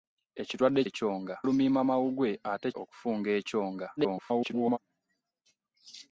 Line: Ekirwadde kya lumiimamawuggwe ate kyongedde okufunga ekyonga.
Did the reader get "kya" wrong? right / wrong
wrong